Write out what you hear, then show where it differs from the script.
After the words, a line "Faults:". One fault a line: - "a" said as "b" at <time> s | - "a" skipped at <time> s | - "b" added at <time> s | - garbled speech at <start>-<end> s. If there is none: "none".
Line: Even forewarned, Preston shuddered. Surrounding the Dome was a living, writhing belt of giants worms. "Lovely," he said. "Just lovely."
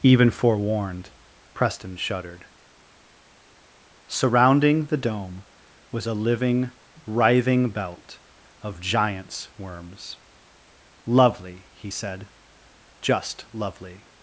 Even forewarned, Preston shuddered. Surrounding the Dome was a living, writhing belt of giants worms. "Lovely," he said. "Just lovely."
Faults:
none